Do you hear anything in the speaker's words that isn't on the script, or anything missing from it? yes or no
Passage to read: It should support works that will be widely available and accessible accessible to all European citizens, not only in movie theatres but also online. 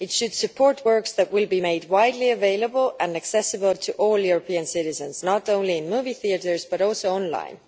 yes